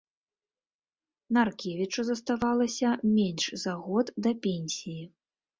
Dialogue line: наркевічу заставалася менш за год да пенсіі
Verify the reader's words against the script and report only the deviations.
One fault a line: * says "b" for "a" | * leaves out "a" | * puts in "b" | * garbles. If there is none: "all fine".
all fine